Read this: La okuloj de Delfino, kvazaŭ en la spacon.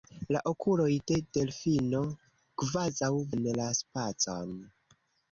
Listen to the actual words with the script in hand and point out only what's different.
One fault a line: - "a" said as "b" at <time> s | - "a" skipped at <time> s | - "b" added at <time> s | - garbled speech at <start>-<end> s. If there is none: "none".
none